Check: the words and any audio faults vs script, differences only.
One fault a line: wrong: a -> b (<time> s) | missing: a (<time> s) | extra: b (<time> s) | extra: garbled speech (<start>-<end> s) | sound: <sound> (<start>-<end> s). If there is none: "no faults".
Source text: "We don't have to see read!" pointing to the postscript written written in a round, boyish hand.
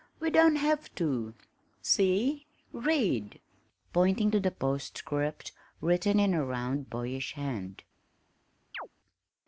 missing: written (6.2 s)
sound: chirp (8.7-8.9 s)